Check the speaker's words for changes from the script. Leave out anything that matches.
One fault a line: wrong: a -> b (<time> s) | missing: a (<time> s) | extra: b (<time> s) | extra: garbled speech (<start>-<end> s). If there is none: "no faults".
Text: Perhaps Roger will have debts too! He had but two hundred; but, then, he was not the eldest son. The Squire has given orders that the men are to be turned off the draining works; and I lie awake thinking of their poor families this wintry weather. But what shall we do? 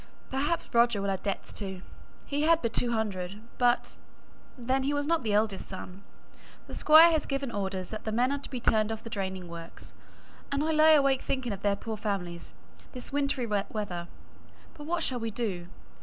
no faults